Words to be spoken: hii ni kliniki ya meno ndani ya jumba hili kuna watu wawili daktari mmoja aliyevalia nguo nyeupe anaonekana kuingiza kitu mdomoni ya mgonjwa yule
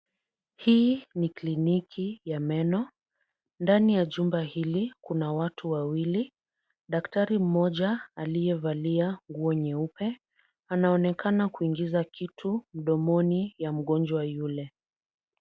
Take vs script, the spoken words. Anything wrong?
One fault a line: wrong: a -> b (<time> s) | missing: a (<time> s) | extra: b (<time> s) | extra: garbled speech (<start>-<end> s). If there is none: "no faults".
no faults